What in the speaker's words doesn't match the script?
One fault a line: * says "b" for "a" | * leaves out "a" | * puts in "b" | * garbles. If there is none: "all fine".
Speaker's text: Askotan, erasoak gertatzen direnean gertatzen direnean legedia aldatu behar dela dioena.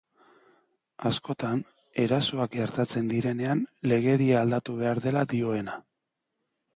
* leaves out "gertatzen direnean"